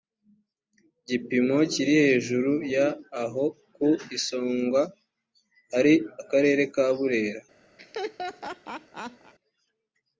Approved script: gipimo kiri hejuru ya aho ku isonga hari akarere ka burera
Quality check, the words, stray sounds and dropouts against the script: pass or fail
fail